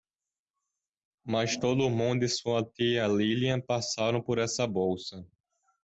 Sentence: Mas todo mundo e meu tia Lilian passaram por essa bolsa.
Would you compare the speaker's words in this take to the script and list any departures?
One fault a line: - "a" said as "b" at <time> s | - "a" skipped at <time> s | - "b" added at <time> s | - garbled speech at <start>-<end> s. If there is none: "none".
- "meu" said as "sua" at 2.3 s